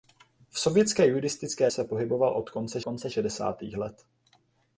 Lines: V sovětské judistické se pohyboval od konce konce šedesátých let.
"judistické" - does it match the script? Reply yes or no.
yes